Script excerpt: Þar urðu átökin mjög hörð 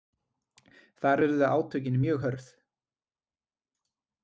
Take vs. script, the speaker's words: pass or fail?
pass